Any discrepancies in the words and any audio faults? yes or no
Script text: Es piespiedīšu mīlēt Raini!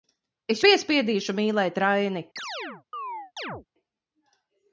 yes